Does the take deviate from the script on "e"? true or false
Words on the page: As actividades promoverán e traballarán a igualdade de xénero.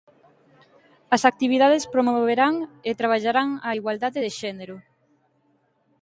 false